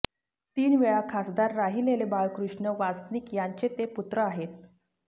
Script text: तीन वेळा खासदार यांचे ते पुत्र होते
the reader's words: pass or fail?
fail